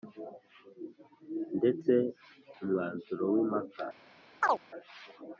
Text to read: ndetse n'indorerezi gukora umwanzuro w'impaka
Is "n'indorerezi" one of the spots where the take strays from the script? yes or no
yes